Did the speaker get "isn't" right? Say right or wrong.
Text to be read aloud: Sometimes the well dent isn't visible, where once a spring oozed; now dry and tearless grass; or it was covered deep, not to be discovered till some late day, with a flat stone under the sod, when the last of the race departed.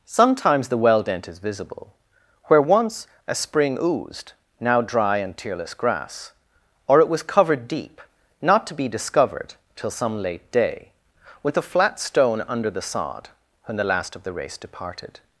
wrong